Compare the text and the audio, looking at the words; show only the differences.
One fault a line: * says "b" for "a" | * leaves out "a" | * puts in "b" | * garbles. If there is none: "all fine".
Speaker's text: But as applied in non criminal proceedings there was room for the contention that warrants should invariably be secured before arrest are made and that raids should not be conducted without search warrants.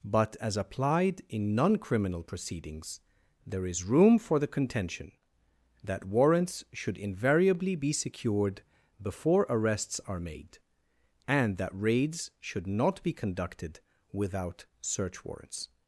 * says "is" for "was"
* says "arrests" for "arrest"